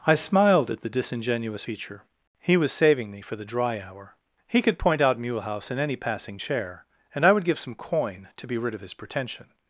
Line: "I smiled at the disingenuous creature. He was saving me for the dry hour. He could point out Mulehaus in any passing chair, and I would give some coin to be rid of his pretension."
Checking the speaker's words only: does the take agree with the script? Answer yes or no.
no